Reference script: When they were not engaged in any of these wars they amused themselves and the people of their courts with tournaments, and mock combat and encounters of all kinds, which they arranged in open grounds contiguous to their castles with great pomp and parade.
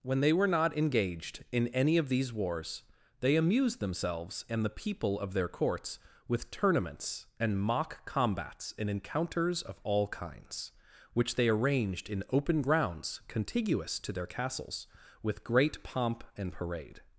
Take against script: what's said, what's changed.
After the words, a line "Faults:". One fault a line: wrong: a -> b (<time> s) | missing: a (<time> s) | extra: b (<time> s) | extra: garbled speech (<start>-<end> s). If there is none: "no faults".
When they were not engaged in any of these wars they amused themselves and the people of their courts with tournaments, and mock combats and encounters of all kinds, which they arranged in open grounds contiguous to their castles with great pomp and parade.
Faults:
wrong: combat -> combats (8.1 s)